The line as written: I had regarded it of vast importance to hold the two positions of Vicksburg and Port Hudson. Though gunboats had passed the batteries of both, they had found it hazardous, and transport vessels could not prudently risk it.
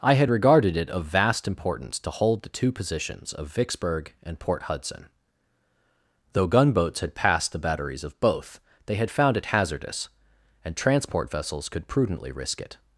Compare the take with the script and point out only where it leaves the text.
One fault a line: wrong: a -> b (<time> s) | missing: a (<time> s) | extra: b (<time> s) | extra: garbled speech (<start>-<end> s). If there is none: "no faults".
missing: not (11.9 s)